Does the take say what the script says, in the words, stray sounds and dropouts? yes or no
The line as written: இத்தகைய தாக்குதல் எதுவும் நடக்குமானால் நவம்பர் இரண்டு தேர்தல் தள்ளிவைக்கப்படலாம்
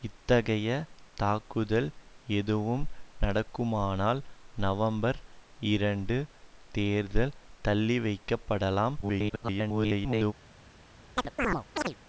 no